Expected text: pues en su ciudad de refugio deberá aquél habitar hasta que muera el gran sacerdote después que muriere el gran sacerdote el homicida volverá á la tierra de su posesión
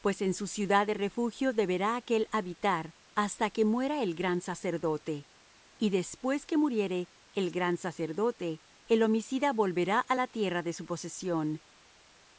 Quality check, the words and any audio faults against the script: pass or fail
fail